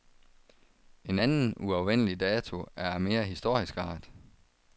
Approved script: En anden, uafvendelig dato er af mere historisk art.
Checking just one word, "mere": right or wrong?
right